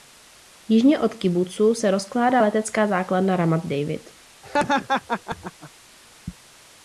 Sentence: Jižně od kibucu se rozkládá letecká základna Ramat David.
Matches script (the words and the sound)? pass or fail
fail